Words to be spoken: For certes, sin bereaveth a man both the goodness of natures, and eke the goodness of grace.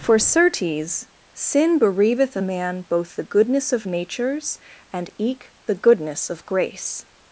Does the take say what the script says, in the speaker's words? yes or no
yes